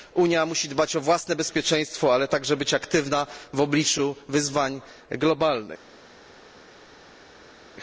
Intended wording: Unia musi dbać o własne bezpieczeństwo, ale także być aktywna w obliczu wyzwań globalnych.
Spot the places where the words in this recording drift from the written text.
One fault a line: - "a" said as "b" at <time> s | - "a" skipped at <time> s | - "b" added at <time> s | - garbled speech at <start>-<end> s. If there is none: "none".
none